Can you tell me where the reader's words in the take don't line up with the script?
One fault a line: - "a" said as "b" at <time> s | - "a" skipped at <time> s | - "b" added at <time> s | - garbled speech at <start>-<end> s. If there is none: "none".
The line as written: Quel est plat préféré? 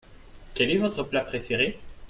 - "votre" added at 0.8 s